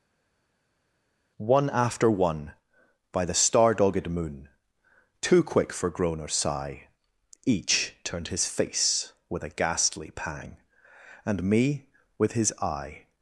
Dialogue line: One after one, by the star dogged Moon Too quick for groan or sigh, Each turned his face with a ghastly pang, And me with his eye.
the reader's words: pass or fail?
pass